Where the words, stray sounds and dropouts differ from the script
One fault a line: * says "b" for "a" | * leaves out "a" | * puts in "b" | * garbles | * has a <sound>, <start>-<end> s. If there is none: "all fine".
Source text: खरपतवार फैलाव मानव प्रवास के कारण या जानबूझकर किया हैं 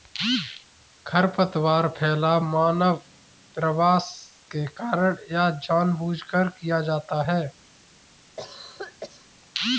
* puts in "जाता"
* has a cough, 8.4-9.3 s